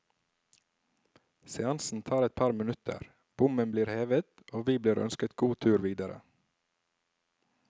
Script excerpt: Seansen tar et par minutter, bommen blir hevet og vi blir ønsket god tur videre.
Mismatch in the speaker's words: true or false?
false